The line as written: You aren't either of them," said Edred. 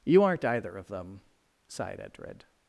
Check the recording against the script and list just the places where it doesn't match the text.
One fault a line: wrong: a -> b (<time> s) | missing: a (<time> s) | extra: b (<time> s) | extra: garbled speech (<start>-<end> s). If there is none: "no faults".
wrong: said -> sighed (1.7 s)